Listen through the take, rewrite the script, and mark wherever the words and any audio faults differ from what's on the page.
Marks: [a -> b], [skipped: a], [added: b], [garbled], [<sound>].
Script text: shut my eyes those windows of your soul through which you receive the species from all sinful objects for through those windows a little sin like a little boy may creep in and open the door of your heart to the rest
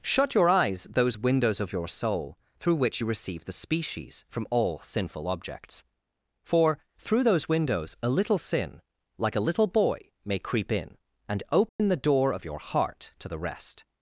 shut [my -> your] eyes those windows of your soul through which you receive the species from all sinful objects for through those windows a little sin like a little boy may creep in and open [dropout] the door of your heart to the rest